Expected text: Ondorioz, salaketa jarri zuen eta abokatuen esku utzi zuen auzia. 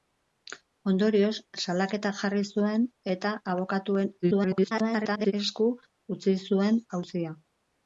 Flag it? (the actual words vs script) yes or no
yes